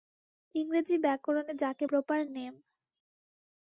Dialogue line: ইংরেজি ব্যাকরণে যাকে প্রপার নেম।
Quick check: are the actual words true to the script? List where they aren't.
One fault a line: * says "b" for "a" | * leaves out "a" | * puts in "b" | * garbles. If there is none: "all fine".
all fine